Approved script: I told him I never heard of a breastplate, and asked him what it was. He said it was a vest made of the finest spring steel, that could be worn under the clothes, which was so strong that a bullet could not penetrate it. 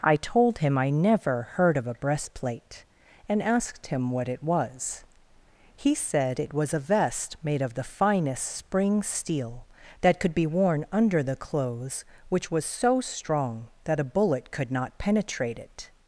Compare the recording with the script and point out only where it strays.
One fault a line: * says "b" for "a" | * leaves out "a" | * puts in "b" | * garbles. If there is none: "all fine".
all fine